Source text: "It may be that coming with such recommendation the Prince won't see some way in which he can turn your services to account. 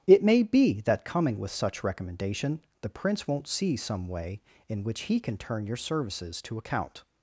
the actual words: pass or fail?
pass